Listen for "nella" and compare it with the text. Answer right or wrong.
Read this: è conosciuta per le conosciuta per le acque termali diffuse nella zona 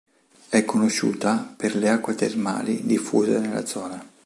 right